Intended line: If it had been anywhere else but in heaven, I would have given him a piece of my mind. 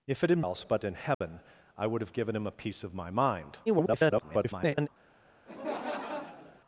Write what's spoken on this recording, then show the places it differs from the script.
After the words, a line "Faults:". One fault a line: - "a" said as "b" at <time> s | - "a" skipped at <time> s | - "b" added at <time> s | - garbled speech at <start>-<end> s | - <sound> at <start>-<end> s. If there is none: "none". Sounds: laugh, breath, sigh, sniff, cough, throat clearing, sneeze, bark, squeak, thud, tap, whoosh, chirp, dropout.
If it had else but in heaven, I would have given him a piece of my mind. [garbled]
Faults:
- "been anywhere" skipped at 0.4 s
- dropout at 1.1-1.2 s
- garbled speech at 3.7-4.9 s
- laugh at 5.5-6.6 s